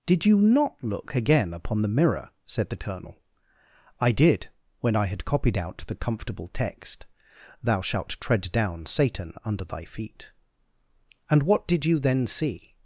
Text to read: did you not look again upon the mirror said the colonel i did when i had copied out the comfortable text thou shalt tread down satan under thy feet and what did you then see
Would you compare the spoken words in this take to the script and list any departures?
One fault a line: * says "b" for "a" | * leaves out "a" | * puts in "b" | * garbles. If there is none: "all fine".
all fine